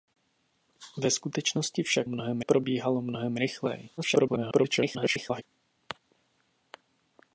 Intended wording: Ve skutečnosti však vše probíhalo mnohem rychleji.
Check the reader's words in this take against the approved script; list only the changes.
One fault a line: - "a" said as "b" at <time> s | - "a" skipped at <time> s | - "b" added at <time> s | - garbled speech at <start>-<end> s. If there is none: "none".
- "vše" said as "mnohem" at 2.1 s
- garbled speech at 4.0-5.4 s